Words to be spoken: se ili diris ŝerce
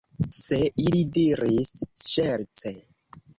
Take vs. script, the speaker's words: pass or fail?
pass